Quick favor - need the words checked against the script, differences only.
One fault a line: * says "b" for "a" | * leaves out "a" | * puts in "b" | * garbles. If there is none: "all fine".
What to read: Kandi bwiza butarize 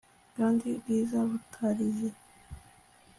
all fine